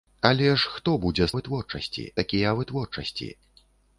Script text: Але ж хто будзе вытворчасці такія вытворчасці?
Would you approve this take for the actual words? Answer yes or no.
yes